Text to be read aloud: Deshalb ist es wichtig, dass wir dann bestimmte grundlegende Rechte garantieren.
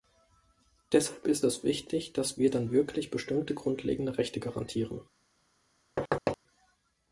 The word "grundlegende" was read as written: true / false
true